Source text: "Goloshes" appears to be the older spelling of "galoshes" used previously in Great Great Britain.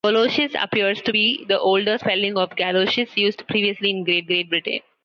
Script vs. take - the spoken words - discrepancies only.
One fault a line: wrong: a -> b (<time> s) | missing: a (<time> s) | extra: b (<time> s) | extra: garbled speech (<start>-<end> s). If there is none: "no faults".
no faults